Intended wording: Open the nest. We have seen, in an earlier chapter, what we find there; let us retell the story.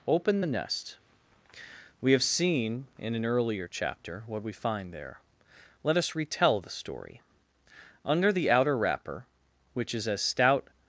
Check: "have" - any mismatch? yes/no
no